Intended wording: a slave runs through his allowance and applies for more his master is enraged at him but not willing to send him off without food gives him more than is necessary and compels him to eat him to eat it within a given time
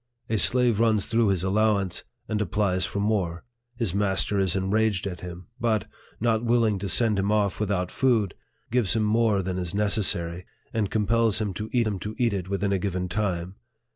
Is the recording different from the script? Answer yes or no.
no